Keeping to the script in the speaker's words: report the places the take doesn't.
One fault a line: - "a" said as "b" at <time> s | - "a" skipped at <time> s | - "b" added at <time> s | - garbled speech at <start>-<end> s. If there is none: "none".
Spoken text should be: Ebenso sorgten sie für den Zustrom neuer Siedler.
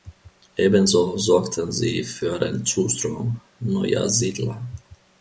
none